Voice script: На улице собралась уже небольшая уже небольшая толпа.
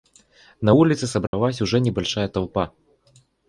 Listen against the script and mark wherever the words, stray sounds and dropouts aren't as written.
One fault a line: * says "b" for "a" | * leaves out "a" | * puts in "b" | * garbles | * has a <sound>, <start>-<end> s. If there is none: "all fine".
* has a dropout, 1.3-1.3 s
* leaves out "уже небольшая"